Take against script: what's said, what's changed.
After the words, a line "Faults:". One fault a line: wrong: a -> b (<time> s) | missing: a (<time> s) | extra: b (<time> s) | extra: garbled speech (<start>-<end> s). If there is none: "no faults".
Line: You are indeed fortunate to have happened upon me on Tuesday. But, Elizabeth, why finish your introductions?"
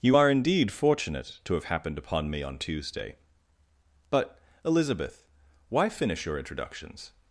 You are indeed fortunate to have happened upon me on Tuesday. But, Elizabeth, why finish your introductions?"
Faults:
no faults